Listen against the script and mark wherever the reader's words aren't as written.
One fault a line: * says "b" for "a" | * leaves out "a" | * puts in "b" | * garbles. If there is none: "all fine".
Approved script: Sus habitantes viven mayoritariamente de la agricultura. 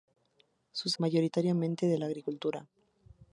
* leaves out "habitantes viven"